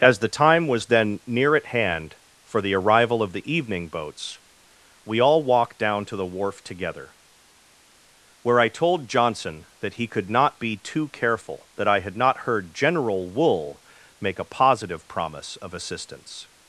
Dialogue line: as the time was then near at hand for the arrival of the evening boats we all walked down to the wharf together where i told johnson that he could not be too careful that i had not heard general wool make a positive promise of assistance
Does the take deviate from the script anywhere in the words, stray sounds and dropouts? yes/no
no